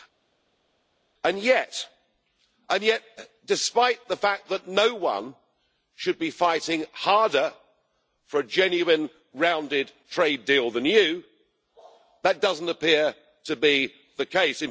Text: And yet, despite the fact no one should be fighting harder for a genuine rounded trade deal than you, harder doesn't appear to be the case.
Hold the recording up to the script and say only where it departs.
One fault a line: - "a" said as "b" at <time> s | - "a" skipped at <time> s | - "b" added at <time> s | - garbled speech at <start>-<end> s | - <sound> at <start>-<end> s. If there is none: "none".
- "that" added at 4.5 s
- "harder" said as "that" at 12.2 s